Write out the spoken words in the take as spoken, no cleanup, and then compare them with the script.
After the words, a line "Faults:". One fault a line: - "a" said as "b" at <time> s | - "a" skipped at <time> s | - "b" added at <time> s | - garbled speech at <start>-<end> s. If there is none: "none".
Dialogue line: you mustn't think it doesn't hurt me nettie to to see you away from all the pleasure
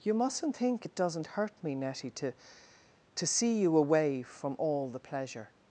you mustn't think it doesn't hurt me nettie to to see you away from all the pleasure
Faults:
none